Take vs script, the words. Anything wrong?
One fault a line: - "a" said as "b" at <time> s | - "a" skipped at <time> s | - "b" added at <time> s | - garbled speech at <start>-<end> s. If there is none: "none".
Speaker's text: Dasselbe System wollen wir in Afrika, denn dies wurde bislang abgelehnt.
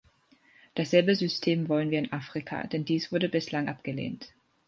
none